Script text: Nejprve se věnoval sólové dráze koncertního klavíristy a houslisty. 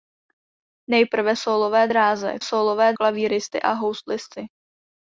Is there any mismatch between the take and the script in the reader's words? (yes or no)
yes